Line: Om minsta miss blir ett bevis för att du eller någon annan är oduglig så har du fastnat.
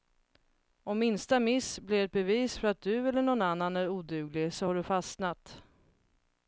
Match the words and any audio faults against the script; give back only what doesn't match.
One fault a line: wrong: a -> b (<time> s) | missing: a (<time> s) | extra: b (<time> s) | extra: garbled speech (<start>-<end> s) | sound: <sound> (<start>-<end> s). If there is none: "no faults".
no faults